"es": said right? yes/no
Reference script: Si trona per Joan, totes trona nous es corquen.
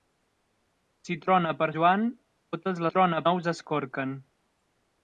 yes